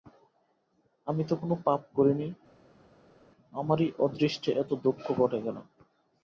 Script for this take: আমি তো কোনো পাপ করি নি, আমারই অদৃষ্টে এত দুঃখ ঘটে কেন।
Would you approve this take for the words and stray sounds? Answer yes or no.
yes